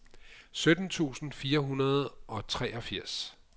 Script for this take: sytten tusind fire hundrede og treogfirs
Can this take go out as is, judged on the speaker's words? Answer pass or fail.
pass